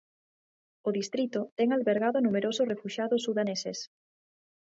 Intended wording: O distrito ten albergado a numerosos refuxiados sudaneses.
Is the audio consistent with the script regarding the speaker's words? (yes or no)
yes